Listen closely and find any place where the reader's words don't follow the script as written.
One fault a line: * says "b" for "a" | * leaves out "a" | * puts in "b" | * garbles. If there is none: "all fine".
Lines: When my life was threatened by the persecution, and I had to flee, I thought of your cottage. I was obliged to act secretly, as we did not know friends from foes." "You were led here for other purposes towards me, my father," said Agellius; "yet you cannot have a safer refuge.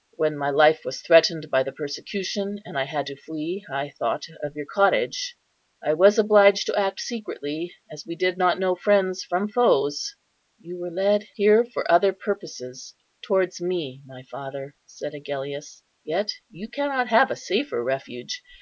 all fine